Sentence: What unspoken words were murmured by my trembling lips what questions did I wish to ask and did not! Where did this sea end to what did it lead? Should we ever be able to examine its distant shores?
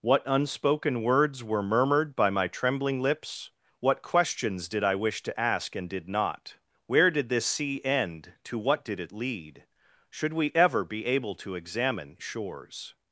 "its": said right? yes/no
no